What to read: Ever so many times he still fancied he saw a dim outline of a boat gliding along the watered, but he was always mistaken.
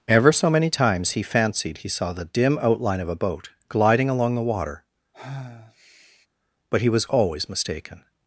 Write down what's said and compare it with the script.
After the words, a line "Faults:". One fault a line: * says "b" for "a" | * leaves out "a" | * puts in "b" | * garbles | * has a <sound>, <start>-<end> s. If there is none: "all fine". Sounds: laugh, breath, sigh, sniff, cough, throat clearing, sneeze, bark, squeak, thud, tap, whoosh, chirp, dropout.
Ever so many times he fancied he saw the dim outline of a boat gliding along the water, but he was always mistaken.
Faults:
* leaves out "still"
* says "the" for "a"
* says "water" for "watered"
* has a sigh, 5.1-6.3 s